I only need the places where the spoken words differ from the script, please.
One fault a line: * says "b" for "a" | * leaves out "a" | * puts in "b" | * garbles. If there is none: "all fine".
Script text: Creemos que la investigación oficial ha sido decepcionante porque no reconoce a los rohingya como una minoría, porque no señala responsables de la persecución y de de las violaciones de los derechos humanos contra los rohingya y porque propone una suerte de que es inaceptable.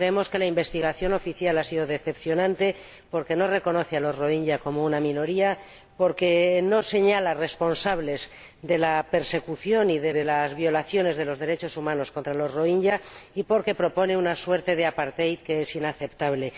all fine